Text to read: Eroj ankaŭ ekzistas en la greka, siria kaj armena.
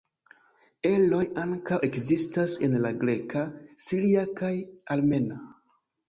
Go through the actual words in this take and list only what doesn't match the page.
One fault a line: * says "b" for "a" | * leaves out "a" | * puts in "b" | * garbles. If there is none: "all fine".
all fine